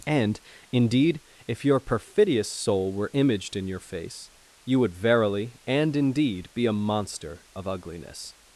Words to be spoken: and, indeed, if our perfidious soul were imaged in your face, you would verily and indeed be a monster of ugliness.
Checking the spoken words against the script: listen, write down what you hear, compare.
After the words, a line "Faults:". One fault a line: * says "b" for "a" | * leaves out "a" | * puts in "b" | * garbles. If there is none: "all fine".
and, indeed, if your perfidious soul were imaged in your face, you would verily and indeed be a monster of ugliness.
Faults:
* says "your" for "our"